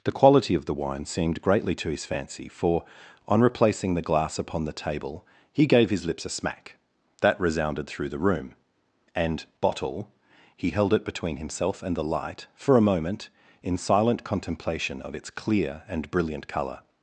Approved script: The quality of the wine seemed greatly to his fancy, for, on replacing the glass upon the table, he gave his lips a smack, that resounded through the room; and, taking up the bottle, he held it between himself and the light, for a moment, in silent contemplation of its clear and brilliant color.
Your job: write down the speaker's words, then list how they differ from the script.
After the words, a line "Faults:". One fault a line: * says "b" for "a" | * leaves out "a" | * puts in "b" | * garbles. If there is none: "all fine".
The quality of the wine seemed greatly to his fancy, for, on replacing the glass upon the table, he gave his lips a smack, that resounded through the room; and, bottle, he held it between himself and the light, for a moment, in silent contemplation of its clear and brilliant color.
Faults:
* leaves out "taking up the"